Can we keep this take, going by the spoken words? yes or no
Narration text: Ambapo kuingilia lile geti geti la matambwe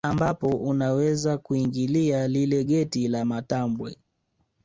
no